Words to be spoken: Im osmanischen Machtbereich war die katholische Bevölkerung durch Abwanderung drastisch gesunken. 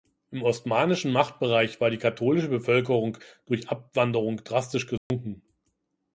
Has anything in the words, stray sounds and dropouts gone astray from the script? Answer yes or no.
yes